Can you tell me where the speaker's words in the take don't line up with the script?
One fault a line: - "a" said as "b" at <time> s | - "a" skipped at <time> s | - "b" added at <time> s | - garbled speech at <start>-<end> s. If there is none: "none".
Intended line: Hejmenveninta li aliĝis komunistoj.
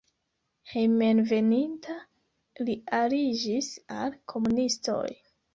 - "al" added at 4.0 s